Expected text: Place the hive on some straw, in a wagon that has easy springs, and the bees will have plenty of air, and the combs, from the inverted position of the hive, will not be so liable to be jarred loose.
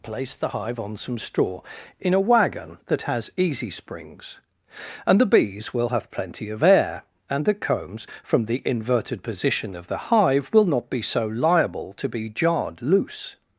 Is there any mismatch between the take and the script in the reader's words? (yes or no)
no